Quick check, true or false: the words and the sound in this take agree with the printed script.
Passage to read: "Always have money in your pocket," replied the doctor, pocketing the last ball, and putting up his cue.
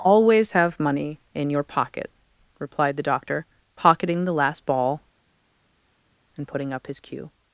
true